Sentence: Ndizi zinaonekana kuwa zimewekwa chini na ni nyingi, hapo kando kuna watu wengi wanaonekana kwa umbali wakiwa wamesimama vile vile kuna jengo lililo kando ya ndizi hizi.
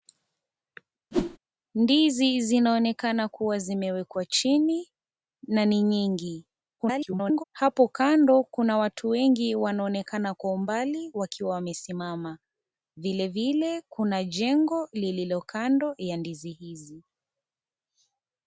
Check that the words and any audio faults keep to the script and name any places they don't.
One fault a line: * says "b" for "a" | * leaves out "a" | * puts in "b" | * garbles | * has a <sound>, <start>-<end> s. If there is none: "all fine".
* has a whoosh, 1.1-1.4 s
* garbles